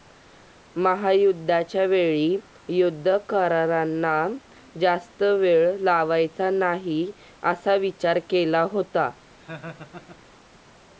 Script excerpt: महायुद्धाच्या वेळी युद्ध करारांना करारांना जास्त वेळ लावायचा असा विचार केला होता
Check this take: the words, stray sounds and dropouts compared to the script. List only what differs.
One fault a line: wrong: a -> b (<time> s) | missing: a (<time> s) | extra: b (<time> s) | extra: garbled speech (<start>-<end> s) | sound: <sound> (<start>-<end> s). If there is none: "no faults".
missing: करारांना (4.2 s)
extra: नाही (6.5 s)
sound: laugh (9.4-10.2 s)